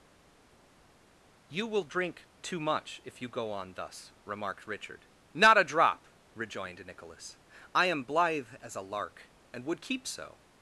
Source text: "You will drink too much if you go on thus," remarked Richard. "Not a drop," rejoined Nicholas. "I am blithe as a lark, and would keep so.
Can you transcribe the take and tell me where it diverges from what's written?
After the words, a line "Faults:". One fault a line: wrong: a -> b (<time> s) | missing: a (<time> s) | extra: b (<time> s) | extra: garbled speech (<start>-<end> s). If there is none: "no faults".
"You will drink too much if you go on thus," remarked Richard. "Not a drop," rejoined Nicholas. "I am blithe as a lark, and would keep so.
Faults:
no faults